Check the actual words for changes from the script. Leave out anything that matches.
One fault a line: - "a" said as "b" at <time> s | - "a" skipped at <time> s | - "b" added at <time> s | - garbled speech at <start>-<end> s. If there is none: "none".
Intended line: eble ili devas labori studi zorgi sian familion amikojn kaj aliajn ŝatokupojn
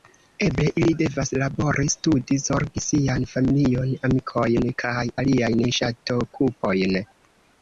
none